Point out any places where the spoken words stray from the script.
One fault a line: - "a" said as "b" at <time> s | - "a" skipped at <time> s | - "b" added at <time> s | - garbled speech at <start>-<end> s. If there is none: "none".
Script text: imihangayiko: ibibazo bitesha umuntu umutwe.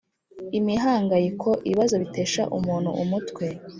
none